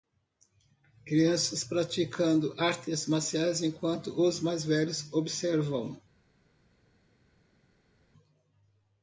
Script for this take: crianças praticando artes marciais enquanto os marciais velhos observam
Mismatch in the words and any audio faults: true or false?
true